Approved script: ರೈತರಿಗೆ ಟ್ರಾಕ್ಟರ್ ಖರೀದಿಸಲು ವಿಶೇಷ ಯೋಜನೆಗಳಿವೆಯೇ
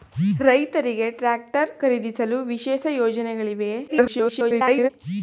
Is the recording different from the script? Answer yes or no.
yes